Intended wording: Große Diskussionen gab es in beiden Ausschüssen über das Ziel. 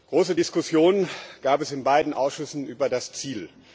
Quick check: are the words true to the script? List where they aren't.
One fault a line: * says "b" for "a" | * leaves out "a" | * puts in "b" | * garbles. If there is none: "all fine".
all fine